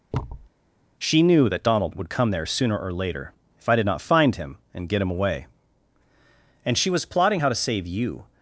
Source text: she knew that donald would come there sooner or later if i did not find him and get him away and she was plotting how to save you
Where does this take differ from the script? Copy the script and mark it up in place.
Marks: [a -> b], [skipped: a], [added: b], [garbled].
she knew that donald would come there sooner or later if i did not find him and get him away and she was plotting how to save you